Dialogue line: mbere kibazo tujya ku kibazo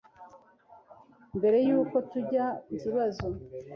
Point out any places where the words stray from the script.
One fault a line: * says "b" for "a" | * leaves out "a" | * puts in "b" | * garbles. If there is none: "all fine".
* says "y'uko" for "kibazo"